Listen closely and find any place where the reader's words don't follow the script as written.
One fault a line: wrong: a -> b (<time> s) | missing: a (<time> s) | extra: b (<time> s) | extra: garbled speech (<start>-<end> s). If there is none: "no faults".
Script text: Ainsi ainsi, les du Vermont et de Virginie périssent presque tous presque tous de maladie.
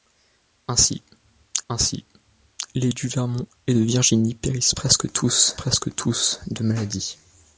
no faults